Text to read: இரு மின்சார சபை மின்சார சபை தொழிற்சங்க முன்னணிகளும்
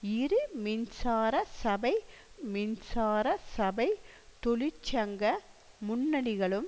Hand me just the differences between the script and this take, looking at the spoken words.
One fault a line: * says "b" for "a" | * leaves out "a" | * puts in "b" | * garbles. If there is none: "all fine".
all fine